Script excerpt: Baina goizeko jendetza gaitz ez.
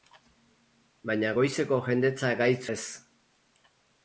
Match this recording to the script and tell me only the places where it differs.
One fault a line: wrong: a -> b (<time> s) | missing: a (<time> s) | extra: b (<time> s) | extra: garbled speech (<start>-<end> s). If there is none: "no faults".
no faults